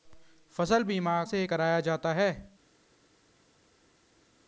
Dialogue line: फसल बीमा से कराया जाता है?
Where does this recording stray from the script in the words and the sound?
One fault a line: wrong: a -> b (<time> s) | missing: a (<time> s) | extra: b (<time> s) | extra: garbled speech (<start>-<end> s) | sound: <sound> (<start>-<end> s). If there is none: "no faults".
no faults